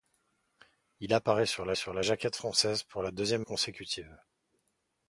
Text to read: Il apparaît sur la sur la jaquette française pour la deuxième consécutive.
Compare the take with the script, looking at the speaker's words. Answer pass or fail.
pass